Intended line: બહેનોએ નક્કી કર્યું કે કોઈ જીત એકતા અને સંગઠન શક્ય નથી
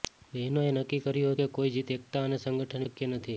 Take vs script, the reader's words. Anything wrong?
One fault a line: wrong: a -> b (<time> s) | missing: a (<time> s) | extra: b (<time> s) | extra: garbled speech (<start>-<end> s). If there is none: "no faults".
no faults